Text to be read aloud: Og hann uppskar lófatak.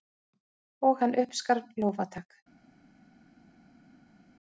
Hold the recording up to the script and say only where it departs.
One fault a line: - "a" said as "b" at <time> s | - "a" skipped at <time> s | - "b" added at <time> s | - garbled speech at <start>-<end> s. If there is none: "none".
none